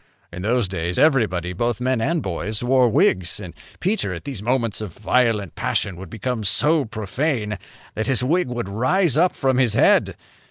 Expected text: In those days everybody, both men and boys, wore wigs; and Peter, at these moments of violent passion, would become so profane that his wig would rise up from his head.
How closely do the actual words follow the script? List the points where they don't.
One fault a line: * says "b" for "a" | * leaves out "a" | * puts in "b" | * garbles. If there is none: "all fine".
all fine